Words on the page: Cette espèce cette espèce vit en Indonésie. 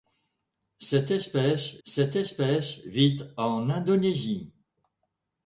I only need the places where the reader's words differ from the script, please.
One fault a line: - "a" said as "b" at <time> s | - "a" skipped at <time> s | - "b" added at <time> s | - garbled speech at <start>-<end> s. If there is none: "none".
none